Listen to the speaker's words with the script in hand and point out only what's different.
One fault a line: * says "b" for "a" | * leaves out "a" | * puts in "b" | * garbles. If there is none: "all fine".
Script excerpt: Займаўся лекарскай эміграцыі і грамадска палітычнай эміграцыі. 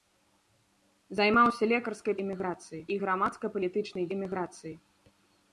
all fine